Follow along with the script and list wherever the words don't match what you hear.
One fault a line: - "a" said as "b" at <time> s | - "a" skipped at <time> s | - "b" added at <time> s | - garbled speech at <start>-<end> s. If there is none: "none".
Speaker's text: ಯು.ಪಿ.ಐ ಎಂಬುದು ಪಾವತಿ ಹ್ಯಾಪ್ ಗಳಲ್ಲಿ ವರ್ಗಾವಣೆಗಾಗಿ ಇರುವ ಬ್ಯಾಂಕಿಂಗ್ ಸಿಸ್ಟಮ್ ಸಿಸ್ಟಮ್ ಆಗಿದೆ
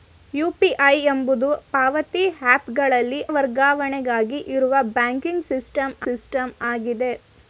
none